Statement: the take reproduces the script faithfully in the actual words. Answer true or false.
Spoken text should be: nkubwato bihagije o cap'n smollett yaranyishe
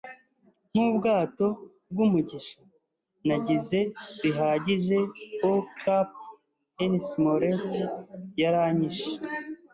false